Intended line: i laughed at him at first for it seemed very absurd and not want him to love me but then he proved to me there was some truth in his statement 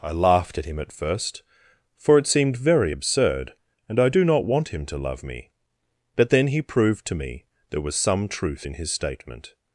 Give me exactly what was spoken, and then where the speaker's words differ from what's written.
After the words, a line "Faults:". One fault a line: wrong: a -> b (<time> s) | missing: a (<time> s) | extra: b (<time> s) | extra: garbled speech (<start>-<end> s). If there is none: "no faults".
i laughed at him at first for it seemed very absurd and i do not want him to love me but then he proved to me there was some truth in his statement
Faults:
extra: i do (4.0 s)